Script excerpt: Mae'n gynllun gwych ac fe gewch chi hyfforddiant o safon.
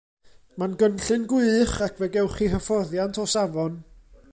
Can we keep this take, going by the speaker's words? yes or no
yes